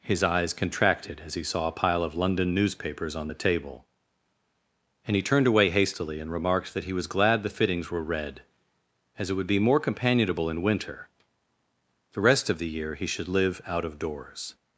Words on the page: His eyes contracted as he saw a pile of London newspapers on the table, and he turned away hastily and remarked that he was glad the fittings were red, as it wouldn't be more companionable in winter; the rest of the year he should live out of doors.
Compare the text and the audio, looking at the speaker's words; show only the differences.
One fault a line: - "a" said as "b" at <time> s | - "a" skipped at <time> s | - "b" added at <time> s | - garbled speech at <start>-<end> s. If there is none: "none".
- "wouldn't" said as "would" at 9.3 s